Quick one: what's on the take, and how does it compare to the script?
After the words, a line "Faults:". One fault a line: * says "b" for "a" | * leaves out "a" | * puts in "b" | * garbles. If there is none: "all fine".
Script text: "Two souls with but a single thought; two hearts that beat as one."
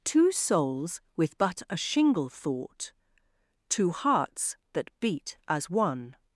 "Two souls with but a shingle thought; two hearts that beat as one."
Faults:
* says "shingle" for "single"